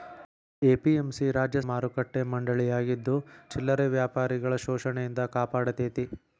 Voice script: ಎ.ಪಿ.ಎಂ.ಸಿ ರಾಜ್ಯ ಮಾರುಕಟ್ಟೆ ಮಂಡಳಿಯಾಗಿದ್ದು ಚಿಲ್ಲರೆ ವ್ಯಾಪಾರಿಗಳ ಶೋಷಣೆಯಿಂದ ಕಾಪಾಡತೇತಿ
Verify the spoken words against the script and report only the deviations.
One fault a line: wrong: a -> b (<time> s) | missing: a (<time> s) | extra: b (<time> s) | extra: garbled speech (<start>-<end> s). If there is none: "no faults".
no faults